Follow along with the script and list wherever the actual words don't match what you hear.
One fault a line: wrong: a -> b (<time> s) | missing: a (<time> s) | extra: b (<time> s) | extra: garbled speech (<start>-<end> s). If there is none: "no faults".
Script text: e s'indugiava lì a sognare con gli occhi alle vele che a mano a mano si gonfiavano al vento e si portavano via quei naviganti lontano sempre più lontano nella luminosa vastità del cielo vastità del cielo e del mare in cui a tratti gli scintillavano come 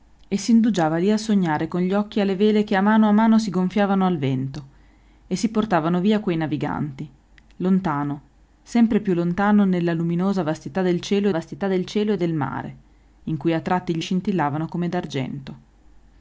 no faults